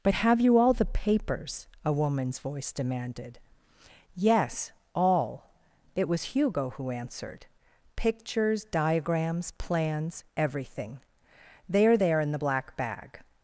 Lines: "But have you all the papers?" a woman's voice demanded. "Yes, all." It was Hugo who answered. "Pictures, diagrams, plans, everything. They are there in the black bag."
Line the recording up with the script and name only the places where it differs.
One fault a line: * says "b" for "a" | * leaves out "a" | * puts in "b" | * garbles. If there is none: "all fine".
all fine